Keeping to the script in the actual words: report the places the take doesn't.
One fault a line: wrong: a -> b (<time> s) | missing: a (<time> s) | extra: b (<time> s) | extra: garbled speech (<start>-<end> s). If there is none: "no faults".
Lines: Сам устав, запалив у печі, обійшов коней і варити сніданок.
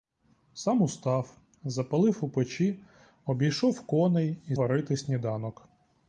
no faults